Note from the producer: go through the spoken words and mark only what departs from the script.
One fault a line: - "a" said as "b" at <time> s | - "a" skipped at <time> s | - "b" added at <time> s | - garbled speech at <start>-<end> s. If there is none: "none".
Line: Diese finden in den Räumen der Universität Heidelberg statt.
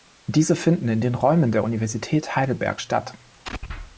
none